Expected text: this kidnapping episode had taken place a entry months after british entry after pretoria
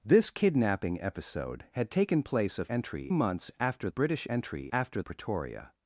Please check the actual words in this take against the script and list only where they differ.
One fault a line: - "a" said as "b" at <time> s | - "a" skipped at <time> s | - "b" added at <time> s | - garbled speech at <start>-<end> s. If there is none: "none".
none